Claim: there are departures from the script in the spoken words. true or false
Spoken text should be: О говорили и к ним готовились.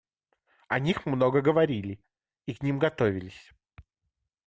true